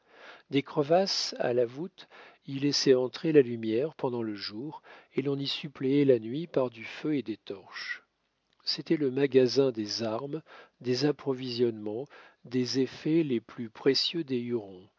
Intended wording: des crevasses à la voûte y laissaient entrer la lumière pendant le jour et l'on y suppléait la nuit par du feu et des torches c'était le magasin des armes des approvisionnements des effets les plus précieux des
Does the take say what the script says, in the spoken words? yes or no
yes